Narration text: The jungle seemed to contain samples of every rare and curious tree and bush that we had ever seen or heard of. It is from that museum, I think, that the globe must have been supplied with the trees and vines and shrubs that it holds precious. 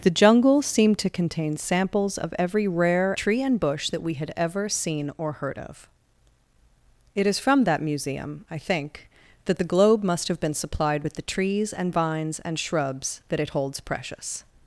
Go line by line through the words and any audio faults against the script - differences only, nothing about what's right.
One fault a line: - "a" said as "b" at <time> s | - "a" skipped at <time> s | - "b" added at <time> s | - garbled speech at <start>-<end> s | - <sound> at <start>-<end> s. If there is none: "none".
- "and curious" skipped at 3.1 s